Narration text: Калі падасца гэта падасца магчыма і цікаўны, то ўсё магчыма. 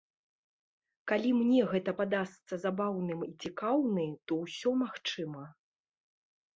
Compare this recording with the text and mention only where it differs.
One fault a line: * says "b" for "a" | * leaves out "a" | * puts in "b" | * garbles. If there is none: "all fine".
* says "мне" for "падасца"
* says "забаўным" for "магчыма"